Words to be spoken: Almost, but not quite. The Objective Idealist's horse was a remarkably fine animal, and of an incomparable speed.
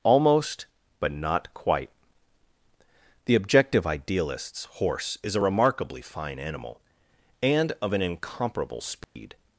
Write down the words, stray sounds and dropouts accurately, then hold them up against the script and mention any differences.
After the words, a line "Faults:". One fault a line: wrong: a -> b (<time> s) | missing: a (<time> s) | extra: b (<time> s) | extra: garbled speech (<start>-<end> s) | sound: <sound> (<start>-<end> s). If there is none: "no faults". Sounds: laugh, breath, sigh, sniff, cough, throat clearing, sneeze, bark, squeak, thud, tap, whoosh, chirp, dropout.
Almost, but not quite. The Objective Idealist's horse is a remarkably fine animal, and of an incomparable speed.
Faults:
wrong: was -> is (5.2 s)
sound: dropout (9.0-9.2 s)